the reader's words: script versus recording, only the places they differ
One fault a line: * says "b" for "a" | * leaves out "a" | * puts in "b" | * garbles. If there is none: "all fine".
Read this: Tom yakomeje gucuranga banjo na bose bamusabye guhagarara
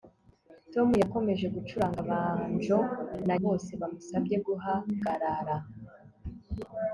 all fine